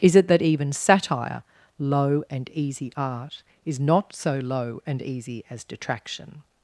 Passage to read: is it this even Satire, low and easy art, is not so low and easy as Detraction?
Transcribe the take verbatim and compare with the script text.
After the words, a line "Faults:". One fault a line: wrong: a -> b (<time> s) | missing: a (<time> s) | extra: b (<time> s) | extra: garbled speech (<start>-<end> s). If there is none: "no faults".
is it that even Satire, low and easy art, is not so low and easy as Detraction?
Faults:
wrong: this -> that (0.3 s)